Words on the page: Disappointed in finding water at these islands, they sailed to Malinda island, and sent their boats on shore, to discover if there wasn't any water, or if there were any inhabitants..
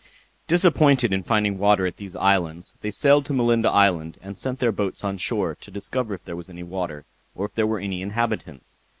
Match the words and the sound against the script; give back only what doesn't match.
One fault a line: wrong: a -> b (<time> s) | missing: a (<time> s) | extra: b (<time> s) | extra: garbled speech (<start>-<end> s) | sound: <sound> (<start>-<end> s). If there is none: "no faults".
wrong: wasn't -> was (6.3 s)